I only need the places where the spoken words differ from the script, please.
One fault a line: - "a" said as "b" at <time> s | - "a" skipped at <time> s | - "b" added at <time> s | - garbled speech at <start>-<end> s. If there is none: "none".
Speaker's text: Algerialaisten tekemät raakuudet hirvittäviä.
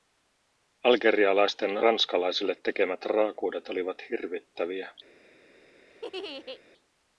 - "ranskalaisille" added at 1.8 s
- "olivat" added at 3.7 s